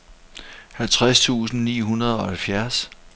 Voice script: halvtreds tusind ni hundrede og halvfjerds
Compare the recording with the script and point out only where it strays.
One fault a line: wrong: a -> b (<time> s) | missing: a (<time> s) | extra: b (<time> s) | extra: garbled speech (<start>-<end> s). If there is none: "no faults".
no faults